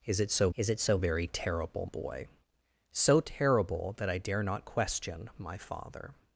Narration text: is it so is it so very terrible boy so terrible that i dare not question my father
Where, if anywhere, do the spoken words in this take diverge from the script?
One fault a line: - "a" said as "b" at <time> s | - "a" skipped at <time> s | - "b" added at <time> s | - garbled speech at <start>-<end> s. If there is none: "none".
none